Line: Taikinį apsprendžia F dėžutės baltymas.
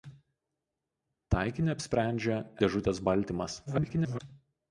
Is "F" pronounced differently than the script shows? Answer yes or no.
yes